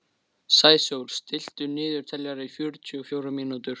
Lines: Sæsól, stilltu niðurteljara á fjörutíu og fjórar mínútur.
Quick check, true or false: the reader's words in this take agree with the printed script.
true